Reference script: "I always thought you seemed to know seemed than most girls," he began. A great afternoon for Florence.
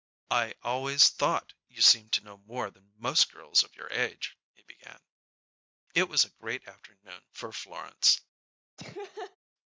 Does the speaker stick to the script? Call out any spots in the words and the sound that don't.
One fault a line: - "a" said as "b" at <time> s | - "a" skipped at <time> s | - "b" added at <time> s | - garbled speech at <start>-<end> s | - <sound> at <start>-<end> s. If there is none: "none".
- "seemed" said as "more" at 2.4 s
- "of your age" added at 3.6 s
- "It was" added at 5.9 s
- laugh at 8.8-9.4 s